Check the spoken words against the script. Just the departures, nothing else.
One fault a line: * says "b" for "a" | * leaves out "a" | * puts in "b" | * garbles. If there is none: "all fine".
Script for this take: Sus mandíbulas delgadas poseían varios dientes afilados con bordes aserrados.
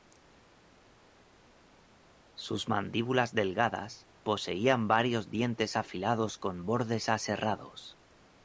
all fine